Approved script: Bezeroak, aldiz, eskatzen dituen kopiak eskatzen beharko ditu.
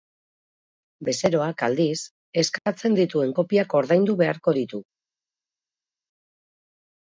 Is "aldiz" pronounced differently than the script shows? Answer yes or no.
no